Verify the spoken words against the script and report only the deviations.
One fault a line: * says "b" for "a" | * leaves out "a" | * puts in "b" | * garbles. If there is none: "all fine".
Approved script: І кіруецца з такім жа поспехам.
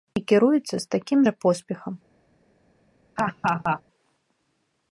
all fine